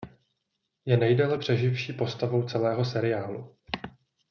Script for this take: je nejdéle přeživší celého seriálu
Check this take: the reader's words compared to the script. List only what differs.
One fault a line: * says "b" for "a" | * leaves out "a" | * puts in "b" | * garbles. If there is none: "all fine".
* puts in "postavou"